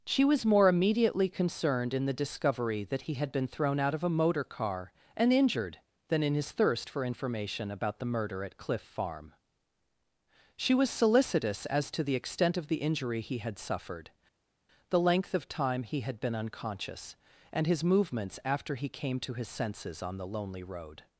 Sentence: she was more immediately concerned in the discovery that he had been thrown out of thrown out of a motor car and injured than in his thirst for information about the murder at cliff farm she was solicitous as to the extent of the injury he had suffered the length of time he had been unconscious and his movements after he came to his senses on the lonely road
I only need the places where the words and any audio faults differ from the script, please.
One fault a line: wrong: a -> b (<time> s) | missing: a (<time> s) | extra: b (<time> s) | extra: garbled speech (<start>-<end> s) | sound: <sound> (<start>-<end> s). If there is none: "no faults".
missing: thrown out of (4.0 s)